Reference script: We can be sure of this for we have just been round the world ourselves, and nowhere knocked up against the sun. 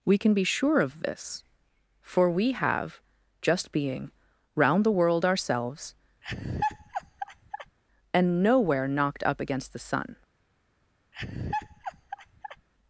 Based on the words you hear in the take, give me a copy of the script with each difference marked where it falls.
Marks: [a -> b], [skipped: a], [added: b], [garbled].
We can be sure of this for we have just [been -> being] round the world ourselves, and nowhere knocked up against the sun.